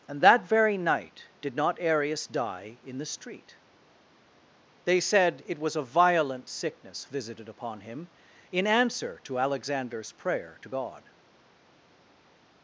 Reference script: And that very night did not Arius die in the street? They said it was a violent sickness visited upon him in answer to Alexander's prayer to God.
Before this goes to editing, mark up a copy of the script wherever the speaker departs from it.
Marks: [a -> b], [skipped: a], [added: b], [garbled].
And that very night did not Arius die in the street? They said it was a violent sickness visited upon him in answer to Alexander's prayer to God.